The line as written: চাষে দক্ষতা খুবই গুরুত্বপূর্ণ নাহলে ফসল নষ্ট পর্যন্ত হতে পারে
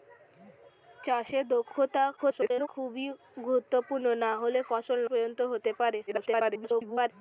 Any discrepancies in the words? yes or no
yes